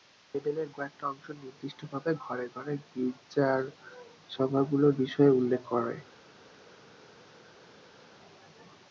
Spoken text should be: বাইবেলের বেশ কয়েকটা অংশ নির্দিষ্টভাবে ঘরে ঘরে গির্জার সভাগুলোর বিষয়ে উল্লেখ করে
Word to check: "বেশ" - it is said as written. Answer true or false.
false